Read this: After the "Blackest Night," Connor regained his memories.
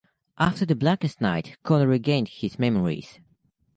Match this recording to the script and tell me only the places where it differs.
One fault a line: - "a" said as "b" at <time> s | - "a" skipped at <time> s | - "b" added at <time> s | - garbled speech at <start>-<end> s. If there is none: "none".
none